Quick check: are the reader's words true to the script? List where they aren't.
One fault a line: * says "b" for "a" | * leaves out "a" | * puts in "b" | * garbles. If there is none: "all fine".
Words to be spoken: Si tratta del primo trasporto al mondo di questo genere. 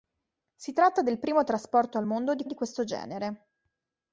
* puts in "di"